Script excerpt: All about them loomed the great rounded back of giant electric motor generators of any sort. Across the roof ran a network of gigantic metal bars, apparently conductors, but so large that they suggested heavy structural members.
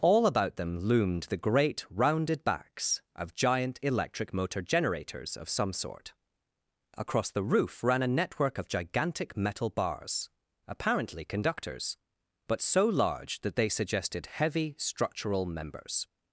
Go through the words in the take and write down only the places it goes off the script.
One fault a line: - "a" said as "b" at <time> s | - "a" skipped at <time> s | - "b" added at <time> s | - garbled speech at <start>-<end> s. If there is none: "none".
- "back" said as "backs" at 2.4 s
- "any" said as "some" at 5.5 s